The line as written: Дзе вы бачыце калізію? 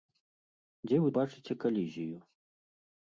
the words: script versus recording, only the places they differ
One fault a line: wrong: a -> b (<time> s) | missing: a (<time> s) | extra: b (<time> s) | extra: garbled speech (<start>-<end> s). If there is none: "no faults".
no faults